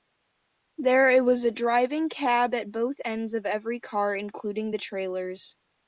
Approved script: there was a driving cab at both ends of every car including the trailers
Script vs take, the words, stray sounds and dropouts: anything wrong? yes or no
no